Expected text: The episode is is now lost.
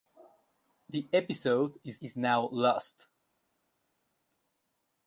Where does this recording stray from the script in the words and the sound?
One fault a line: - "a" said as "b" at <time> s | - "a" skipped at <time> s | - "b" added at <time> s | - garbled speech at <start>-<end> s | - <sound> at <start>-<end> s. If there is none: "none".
none